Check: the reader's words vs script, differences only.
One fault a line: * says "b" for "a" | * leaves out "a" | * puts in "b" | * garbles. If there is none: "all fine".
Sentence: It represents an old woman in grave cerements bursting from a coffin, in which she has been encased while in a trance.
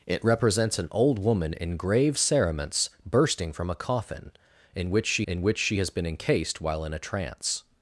* puts in "in which she"